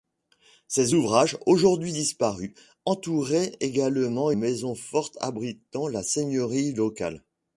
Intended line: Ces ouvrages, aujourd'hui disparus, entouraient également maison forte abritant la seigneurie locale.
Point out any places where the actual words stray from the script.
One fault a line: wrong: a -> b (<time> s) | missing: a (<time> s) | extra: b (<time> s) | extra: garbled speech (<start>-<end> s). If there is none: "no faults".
no faults